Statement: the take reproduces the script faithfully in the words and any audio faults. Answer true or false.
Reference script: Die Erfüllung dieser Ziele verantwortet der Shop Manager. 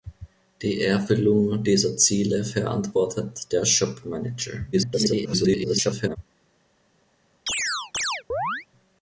false